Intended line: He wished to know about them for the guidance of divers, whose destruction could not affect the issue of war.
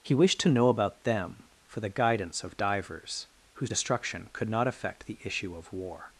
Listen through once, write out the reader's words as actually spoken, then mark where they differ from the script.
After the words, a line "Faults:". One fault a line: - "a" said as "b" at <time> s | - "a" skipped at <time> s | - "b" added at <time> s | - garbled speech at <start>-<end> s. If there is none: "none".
He wished to know about them for the guidance of divers, whose destruction could not affect the issue of war.
Faults:
none